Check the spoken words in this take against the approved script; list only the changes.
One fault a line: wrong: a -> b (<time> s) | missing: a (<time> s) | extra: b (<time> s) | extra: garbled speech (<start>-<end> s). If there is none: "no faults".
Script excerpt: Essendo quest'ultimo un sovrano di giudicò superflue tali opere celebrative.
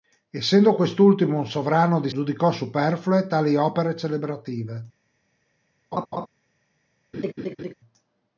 no faults